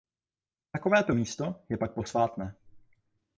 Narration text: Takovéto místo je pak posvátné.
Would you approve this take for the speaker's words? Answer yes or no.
yes